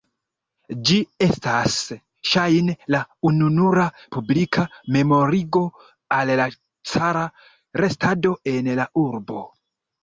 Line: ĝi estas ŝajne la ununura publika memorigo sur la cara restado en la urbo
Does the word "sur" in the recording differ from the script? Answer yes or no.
yes